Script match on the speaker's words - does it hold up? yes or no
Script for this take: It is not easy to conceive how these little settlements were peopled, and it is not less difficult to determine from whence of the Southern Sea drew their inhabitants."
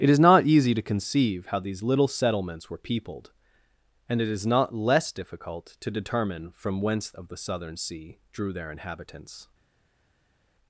yes